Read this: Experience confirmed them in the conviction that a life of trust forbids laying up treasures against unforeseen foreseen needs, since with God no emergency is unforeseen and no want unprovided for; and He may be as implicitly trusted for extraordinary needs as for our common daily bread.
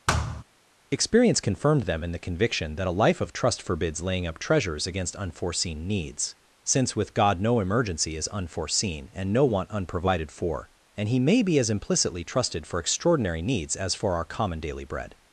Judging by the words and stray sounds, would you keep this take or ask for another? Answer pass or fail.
fail